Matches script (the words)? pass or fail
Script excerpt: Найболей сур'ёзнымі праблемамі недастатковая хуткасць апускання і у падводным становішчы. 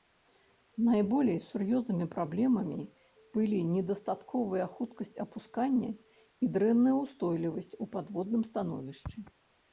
fail